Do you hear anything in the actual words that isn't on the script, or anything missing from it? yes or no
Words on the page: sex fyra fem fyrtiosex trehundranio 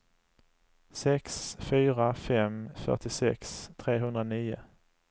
no